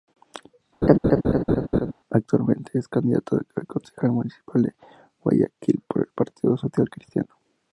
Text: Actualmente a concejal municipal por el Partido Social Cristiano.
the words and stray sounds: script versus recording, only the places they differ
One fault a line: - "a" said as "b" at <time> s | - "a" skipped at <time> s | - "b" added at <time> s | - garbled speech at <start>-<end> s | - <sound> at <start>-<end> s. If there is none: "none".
- laugh at 0.8-1.9 s
- "es candidato" added at 2.8 s
- "de Guayaquil" added at 4.6 s